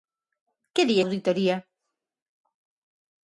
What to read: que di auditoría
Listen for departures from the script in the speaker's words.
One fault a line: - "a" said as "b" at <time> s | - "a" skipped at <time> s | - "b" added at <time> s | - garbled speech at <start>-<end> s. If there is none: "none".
none